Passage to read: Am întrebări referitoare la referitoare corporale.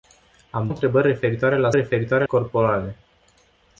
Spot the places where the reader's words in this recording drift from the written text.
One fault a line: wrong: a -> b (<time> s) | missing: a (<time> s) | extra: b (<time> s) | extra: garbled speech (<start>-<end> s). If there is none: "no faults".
no faults